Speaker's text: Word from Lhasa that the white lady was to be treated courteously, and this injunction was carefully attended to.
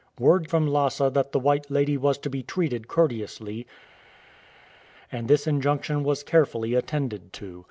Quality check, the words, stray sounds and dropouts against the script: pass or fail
pass